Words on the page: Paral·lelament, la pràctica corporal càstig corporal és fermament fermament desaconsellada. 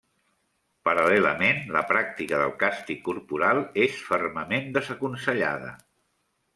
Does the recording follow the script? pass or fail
fail